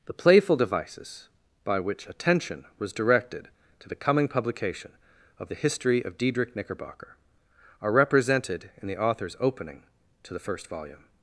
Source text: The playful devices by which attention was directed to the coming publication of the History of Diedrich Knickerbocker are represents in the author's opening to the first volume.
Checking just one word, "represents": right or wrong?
wrong